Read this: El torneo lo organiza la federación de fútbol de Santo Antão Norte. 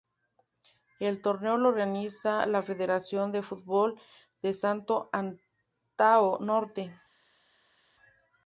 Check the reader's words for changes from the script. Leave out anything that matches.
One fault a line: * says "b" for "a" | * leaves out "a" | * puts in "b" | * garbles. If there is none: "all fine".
all fine